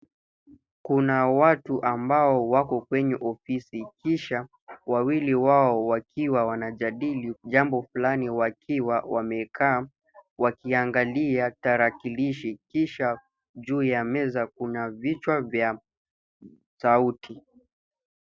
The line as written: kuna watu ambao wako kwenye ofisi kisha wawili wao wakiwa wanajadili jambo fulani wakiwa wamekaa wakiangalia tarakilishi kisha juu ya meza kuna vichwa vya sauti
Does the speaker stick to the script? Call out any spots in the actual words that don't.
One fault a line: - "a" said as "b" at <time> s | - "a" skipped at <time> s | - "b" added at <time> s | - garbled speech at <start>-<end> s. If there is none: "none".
none